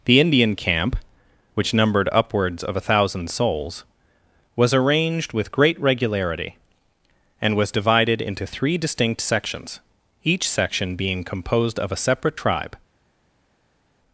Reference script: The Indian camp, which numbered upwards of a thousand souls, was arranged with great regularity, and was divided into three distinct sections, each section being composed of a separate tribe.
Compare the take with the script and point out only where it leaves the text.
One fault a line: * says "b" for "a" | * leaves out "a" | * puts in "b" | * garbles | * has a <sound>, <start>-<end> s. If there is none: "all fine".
all fine